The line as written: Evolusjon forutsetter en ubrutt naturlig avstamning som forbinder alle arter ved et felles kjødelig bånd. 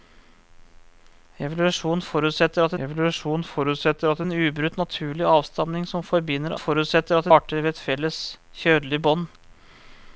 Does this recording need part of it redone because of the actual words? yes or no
yes